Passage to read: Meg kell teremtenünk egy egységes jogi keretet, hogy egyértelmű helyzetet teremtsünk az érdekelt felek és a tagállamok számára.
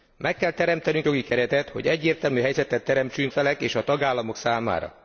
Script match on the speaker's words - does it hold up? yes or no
no